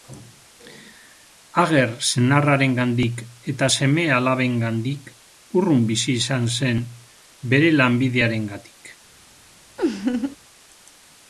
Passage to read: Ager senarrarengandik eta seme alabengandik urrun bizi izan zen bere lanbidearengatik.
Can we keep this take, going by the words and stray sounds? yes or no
no